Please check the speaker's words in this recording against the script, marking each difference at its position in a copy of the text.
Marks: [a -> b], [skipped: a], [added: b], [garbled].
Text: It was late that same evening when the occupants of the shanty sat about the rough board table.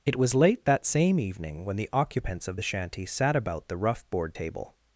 It was late that same evening when the occupants of the shanty sat about the rough board table.